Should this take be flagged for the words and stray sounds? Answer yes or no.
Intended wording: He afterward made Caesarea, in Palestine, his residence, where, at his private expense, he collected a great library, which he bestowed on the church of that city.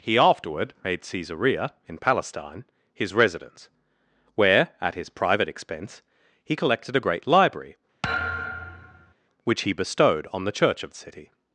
yes